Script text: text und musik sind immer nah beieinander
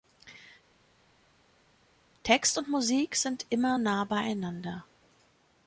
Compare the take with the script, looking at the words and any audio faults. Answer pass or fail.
pass